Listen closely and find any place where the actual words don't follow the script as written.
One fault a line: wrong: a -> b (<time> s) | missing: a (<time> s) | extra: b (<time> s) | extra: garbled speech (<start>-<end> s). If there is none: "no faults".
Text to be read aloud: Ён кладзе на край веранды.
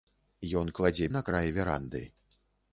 no faults